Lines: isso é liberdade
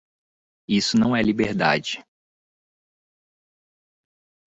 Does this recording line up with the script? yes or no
no